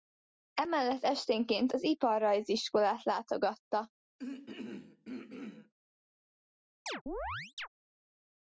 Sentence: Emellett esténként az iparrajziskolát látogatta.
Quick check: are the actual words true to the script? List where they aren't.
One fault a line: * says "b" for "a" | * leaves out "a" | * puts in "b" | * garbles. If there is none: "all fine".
all fine